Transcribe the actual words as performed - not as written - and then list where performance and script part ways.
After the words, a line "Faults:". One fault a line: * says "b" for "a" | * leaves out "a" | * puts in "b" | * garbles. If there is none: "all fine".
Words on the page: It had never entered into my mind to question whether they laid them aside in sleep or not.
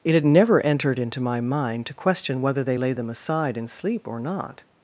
It had never entered into my mind to question whether they laid them aside in sleep or not.
Faults:
all fine